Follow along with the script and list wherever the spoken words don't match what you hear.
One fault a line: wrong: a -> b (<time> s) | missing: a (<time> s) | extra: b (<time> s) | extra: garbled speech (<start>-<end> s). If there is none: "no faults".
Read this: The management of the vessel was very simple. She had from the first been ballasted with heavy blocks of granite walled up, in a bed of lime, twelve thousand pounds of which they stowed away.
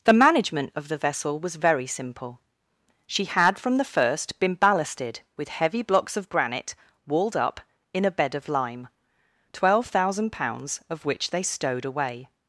no faults